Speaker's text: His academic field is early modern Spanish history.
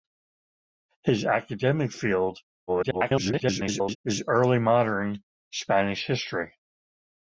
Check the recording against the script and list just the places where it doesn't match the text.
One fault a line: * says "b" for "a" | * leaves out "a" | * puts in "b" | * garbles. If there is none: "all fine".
* garbles